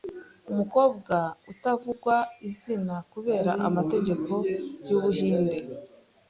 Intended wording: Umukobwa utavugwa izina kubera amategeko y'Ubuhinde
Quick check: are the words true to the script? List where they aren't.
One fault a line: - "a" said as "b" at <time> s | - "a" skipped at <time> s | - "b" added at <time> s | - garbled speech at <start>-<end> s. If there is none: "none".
none